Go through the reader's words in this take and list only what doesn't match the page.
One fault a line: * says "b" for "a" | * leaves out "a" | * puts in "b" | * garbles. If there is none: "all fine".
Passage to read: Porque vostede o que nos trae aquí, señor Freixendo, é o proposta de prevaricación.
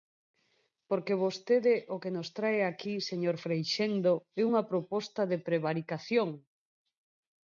* says "unha" for "o"